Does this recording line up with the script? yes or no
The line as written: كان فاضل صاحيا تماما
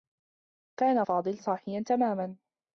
yes